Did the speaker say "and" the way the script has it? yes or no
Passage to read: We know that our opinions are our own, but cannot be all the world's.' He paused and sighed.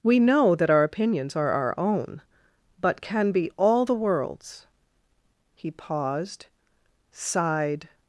no